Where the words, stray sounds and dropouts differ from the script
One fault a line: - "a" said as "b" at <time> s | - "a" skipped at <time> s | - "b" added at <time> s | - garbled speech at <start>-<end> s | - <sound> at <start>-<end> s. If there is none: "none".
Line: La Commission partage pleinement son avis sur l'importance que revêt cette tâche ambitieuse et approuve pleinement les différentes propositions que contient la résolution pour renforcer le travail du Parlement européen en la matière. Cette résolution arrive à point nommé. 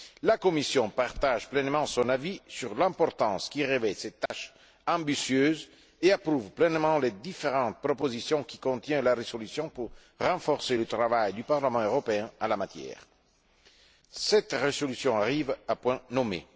- dropout at 4.3-4.3 s